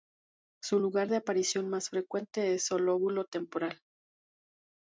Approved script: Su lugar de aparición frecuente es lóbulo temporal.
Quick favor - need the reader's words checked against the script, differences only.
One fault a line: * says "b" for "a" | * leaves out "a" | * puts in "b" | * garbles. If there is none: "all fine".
* puts in "más"
* puts in "el"